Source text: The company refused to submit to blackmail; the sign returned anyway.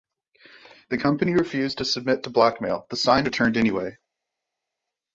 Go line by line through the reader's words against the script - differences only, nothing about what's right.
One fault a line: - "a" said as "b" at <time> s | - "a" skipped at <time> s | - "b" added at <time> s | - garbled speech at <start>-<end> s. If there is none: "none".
none